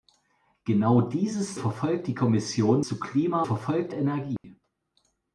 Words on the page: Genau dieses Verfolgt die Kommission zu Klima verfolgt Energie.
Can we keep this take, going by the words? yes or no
yes